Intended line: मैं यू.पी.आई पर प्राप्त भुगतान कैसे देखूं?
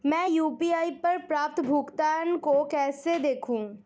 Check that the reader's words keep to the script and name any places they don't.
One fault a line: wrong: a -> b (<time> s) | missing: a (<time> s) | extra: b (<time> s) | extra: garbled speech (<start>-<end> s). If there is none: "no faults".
extra: को (2.4 s)